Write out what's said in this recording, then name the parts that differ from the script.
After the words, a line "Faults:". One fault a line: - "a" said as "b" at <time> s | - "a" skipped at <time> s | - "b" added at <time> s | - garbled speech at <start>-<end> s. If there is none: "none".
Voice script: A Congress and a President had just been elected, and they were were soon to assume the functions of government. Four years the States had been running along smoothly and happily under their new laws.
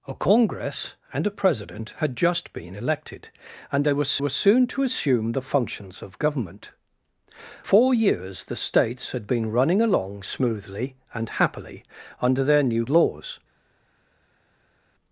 A Congress and a President had just been elected, and they were were soon to assume the functions of government. Four years the States had been running along smoothly and happily under their new laws.
Faults:
none